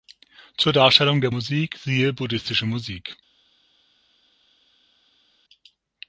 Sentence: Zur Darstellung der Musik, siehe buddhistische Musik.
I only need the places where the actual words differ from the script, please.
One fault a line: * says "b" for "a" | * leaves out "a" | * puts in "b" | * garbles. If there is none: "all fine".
all fine